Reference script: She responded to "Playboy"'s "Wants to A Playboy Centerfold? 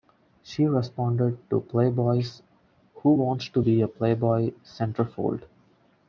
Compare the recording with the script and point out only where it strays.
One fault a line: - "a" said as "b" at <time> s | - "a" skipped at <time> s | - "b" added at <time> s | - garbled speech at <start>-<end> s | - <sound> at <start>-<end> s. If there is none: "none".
- "Who" added at 3.0 s
- "Be" added at 3.6 s